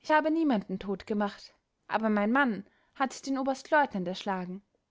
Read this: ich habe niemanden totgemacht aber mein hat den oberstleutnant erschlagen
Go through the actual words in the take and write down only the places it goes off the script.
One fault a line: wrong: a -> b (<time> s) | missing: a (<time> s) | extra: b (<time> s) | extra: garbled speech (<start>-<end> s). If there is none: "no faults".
extra: mann (2.3 s)